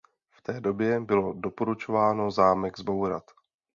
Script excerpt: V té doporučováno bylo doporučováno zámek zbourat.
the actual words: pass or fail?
fail